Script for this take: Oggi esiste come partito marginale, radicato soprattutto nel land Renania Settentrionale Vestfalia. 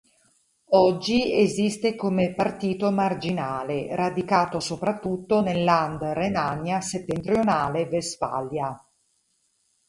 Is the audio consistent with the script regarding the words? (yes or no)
yes